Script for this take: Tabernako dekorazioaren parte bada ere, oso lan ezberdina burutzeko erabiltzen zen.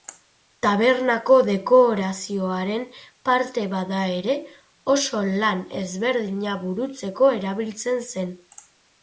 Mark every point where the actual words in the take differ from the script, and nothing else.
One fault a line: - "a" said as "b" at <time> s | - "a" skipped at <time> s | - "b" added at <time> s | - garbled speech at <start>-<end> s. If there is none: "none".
none